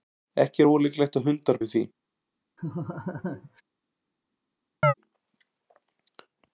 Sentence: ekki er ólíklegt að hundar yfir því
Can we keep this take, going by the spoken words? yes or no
yes